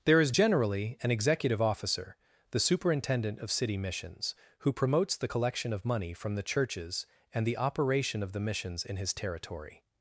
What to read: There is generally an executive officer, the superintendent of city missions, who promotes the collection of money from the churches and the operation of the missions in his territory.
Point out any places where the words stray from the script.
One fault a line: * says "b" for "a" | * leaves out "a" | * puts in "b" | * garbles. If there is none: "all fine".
all fine